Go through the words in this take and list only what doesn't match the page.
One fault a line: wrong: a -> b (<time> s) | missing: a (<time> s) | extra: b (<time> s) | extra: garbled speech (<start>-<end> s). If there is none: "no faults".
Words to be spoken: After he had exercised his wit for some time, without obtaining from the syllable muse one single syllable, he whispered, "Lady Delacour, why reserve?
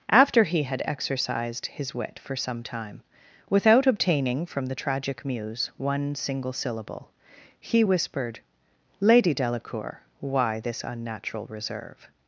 wrong: syllable -> tragic (4.8 s)
extra: this unnatural (10.6 s)